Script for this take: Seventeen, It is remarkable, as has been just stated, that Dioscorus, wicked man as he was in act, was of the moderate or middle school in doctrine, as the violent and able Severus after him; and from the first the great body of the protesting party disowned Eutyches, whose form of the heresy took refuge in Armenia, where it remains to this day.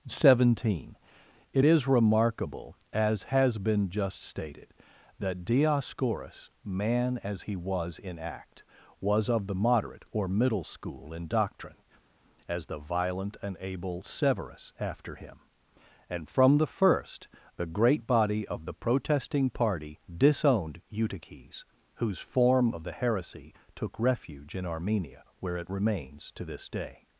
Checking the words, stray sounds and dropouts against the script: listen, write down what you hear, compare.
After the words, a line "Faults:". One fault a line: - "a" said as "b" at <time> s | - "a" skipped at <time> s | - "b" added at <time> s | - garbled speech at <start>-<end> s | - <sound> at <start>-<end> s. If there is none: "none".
Seventeen, It is remarkable, as has been just stated, that Dioscorus, man as he was in act, was of the moderate or middle school in doctrine, as the violent and able Severus after him; and from the first the great body of the protesting party disowned Eutyches, whose form of the heresy took refuge in Armenia, where it remains to this day.
Faults:
- "wicked" skipped at 6.5 s